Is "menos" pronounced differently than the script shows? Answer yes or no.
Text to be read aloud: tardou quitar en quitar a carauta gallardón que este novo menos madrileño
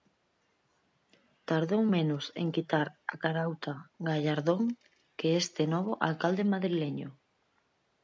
yes